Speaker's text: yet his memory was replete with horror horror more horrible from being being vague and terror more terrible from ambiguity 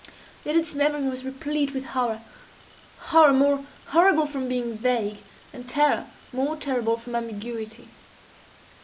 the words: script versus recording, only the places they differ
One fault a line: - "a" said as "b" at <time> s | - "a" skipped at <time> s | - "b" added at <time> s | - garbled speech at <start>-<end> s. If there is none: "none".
- "his" said as "its" at 0.6 s
- "being" skipped at 4.8 s